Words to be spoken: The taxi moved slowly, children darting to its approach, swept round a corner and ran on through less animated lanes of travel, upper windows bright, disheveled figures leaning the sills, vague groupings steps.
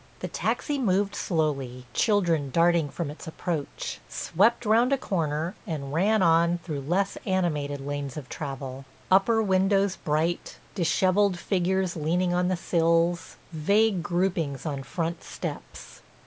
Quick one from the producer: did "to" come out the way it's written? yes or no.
no